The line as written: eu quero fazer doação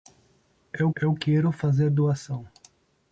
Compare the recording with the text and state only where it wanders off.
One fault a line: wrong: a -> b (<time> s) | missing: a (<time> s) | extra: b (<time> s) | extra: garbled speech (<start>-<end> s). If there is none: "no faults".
extra: eu (1.0 s)